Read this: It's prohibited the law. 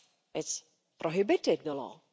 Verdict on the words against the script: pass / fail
pass